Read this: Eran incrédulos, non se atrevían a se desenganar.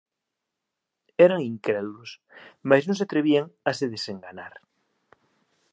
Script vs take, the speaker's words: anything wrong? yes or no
yes